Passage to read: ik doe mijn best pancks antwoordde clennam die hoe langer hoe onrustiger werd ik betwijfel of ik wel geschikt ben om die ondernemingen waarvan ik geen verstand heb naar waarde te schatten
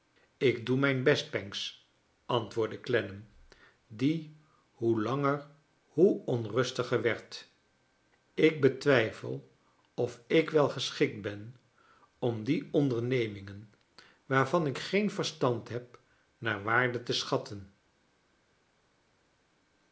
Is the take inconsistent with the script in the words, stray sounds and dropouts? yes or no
no